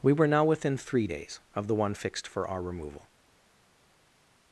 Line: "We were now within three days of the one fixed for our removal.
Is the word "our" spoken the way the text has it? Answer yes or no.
yes